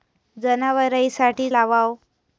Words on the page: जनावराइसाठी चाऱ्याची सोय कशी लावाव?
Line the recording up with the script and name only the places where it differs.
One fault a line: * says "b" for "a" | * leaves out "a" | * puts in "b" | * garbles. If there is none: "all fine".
* leaves out "चाऱ्याची सोय कशी"